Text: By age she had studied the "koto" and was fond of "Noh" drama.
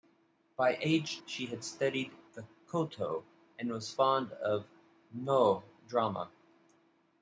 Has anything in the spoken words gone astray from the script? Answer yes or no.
no